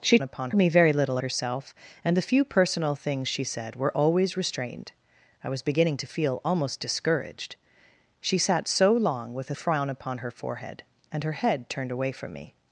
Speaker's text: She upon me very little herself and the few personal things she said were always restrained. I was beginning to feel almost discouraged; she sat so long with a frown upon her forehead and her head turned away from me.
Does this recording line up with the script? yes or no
yes